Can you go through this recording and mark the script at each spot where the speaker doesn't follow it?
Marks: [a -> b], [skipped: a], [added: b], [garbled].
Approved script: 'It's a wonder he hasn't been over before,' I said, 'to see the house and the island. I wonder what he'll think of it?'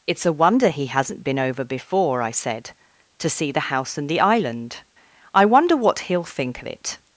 'It's a wonder he hasn't been over before,' I said, 'to see the house and the island. I wonder what he'll think of it?'